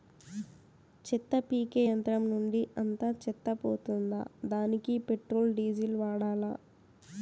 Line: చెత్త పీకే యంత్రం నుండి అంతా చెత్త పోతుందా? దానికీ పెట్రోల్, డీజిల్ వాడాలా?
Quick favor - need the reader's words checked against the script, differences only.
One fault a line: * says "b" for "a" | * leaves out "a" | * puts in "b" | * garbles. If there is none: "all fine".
all fine